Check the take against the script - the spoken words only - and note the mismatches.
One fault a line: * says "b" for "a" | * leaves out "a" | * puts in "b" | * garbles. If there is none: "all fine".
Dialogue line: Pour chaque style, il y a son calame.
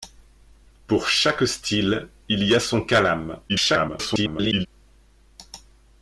* garbles